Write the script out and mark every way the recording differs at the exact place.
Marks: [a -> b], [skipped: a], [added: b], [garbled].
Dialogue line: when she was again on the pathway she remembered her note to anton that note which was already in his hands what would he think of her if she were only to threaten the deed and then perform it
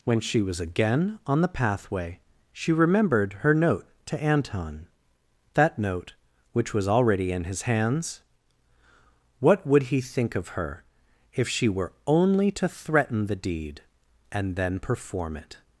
when she was again on the pathway she remembered her note to anton that note which was already in his hands what would he think of her if she were only to threaten the deed and then perform it